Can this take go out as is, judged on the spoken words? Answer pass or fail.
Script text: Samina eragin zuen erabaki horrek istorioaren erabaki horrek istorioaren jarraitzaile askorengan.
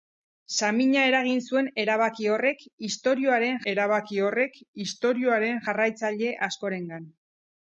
pass